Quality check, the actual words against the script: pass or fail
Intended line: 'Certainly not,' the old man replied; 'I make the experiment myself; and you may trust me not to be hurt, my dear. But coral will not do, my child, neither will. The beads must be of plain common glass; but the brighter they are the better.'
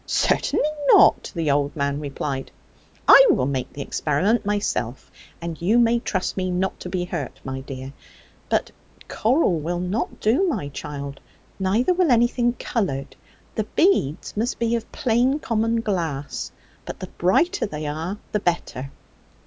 fail